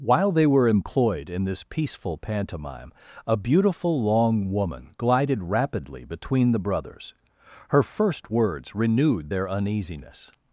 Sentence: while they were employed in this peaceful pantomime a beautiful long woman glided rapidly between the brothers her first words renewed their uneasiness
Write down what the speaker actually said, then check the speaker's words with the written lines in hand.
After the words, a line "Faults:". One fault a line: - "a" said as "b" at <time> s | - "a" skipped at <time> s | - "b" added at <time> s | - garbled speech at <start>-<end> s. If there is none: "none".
while they were employed in this peaceful pantomime a beautiful long woman glided rapidly between the brothers her first words renewed their uneasiness
Faults:
none